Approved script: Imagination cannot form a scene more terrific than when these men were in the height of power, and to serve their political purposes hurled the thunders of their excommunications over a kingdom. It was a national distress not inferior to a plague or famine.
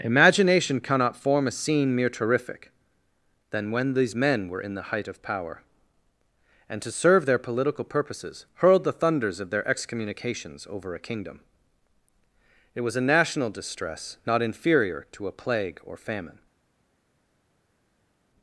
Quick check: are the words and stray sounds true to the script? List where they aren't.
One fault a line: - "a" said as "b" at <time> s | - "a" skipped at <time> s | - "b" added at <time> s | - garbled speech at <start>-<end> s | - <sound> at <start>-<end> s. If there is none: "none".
- "more" said as "mere" at 1.9 s